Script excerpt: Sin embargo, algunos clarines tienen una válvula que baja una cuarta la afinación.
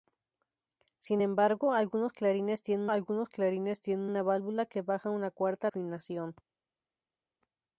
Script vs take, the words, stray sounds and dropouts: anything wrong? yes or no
yes